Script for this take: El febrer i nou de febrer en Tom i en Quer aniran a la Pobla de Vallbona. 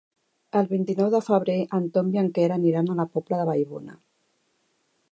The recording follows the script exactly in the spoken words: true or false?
false